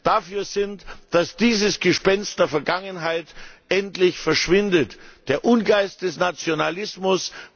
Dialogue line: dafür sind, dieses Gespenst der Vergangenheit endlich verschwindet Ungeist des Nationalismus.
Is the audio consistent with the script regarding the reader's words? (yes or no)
no